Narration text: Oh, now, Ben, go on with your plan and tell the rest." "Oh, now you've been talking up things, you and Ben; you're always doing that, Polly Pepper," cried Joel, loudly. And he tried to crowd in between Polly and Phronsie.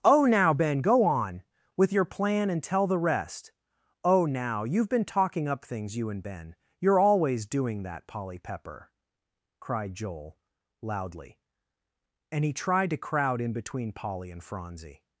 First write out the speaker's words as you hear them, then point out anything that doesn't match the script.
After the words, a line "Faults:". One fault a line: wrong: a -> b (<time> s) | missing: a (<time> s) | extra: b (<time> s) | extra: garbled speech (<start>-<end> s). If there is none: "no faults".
Oh, now, Ben, go on with your plan and tell the rest." "Oh, now you've been talking up things, you and Ben; you're always doing that, Polly Pepper," cried Joel, loudly. And he tried to crowd in between Polly and Phronsie.
Faults:
no faults